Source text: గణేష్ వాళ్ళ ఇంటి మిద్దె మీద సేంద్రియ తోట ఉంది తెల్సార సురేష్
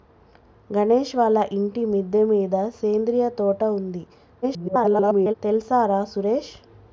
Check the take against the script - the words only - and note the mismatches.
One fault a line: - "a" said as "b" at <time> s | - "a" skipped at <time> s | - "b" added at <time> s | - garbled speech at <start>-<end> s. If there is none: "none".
- garbled speech at 4.4-5.3 s